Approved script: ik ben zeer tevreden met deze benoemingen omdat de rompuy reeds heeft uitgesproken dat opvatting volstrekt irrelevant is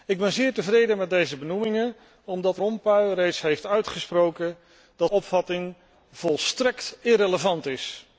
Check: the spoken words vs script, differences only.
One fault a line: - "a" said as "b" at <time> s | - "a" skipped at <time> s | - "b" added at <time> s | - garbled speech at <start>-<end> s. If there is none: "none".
none